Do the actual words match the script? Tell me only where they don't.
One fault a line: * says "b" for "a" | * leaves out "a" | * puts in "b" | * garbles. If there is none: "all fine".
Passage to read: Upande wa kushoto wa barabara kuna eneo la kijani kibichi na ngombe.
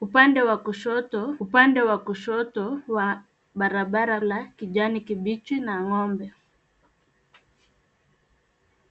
* puts in "upande"
* says "kushoto wa barabara" for "barabara kuna eneo"